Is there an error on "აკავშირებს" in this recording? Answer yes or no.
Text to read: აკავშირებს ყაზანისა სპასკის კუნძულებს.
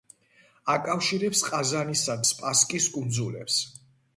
no